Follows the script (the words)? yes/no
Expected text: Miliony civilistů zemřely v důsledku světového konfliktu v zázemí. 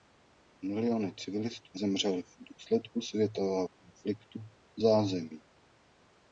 yes